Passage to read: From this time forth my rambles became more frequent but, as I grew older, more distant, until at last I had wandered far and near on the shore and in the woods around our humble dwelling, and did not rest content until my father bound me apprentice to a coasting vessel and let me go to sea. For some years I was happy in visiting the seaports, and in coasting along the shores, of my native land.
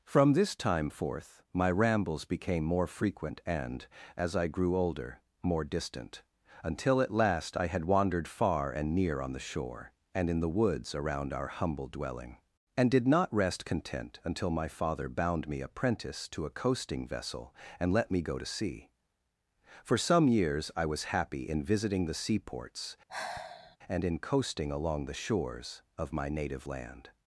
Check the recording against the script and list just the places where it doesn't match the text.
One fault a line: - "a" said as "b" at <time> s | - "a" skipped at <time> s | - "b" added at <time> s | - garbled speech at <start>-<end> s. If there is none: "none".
- "but" said as "and" at 3.5 s